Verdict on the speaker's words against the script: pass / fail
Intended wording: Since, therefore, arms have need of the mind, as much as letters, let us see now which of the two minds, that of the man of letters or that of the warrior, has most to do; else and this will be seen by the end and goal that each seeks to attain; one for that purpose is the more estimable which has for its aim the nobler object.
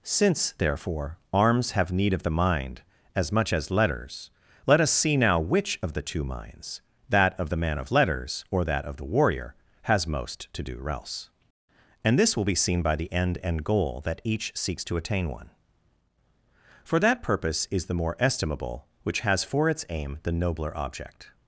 pass